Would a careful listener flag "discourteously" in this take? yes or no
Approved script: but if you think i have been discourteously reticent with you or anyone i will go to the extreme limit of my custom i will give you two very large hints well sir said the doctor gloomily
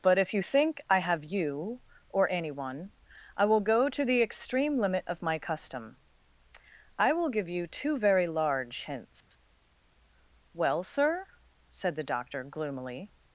yes